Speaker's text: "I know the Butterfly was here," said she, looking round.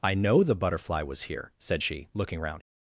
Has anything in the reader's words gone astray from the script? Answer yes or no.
no